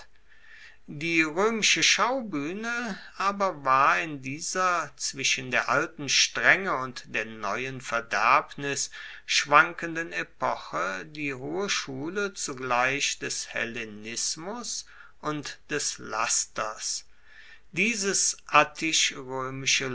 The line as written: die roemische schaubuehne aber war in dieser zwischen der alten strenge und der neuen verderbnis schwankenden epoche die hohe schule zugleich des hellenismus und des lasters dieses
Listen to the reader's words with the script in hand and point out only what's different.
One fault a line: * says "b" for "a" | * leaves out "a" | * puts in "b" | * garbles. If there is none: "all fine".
all fine